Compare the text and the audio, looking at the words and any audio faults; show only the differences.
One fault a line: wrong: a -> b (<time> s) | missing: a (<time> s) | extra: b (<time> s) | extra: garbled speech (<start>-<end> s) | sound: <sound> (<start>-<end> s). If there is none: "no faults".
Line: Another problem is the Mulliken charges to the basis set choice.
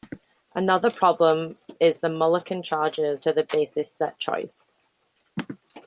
no faults